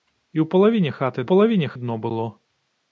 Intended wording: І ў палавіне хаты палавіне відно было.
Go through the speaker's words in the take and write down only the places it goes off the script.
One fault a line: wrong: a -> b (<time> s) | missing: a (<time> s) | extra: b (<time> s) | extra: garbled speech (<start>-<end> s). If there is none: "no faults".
no faults